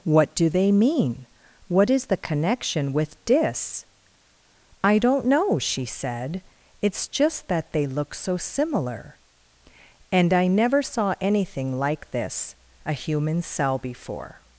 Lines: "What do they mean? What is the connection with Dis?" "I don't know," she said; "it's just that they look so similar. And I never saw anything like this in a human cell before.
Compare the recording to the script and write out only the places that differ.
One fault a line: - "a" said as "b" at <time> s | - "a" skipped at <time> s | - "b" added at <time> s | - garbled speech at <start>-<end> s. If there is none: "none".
- "in" skipped at 12.6 s